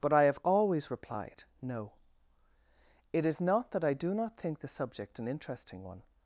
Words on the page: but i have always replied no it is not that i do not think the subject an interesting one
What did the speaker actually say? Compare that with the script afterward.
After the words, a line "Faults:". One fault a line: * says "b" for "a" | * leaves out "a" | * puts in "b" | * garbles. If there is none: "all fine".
but i have always replied no it is not that i do not think the subject an interesting one
Faults:
all fine